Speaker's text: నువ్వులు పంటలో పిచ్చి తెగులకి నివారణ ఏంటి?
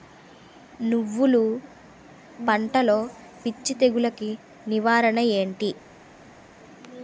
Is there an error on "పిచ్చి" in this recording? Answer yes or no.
no